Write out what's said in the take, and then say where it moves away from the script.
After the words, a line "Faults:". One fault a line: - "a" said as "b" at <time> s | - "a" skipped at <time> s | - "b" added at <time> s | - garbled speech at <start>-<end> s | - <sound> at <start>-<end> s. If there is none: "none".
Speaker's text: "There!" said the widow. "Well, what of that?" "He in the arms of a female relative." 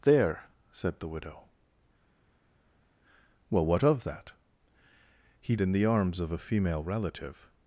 "There!" said the widow. "Well, what of that?" "He in the arms of a female relative."
Faults:
none